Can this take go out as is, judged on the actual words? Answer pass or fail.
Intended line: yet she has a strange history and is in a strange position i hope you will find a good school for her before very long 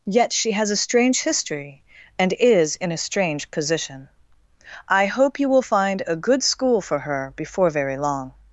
pass